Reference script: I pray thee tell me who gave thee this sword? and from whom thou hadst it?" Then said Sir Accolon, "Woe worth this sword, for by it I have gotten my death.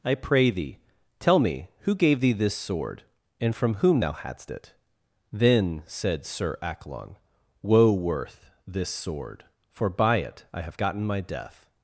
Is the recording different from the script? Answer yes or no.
no